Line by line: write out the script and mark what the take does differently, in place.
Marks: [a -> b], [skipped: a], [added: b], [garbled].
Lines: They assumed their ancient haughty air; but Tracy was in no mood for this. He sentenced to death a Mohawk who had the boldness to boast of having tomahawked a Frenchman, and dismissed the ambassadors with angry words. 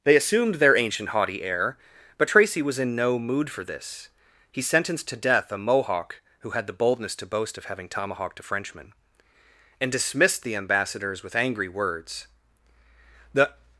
They assumed their ancient haughty air; but Tracy was in no mood for this. He sentenced to death a Mohawk who had the boldness to boast of having tomahawked a Frenchman, and dismissed the ambassadors with angry words. [added: The]